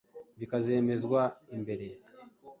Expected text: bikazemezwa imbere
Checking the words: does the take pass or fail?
pass